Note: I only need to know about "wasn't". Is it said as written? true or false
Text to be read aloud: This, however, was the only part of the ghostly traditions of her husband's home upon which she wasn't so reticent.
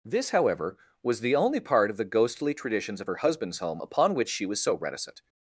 false